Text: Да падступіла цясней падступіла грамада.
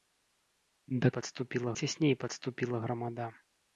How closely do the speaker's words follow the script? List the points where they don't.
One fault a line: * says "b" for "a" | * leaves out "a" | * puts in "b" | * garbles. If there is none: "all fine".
all fine